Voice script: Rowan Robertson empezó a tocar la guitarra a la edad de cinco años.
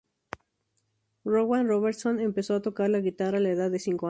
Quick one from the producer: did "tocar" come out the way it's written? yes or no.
yes